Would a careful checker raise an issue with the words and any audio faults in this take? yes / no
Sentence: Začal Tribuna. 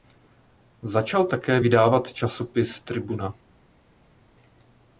yes